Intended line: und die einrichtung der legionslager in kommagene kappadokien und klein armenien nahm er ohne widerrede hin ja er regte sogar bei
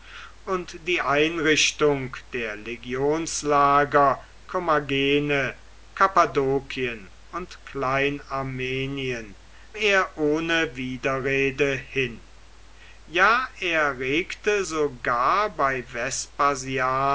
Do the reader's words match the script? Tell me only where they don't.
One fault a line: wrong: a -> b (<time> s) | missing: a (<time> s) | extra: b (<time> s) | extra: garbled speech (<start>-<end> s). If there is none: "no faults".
missing: in (4.2 s)
missing: nahm (9.4 s)